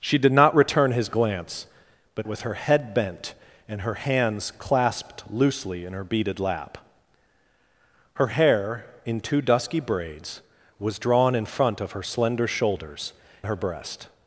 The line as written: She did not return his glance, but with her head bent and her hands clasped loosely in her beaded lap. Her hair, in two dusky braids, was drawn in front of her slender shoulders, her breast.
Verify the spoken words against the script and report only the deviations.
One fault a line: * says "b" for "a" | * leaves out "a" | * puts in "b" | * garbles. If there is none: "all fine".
all fine